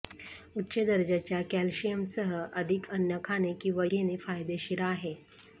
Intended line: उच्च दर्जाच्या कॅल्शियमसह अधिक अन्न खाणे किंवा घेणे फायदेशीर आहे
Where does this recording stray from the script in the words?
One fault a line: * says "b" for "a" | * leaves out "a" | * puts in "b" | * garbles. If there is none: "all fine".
all fine